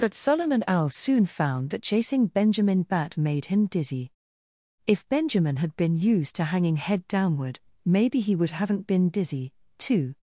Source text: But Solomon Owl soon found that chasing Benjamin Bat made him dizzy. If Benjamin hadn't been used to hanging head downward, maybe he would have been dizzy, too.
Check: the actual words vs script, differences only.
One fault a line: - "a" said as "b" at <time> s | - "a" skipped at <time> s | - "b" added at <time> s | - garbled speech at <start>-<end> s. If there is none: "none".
- "hadn't" said as "had" at 5.6 s
- "have" said as "haven't" at 8.5 s